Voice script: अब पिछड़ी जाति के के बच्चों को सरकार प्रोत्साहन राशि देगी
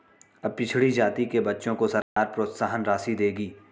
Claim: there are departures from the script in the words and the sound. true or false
true